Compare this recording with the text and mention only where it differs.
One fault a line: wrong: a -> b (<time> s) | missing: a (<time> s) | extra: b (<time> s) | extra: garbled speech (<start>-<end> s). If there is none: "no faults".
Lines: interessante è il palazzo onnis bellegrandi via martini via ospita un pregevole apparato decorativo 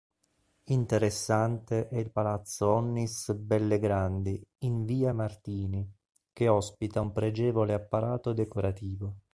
extra: in (4.6 s)
wrong: via -> che (6.3 s)